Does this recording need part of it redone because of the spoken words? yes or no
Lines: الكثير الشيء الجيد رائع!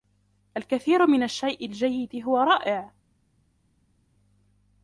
yes